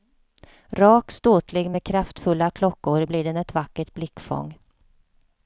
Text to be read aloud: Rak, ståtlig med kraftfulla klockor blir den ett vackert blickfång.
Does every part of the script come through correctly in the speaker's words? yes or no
yes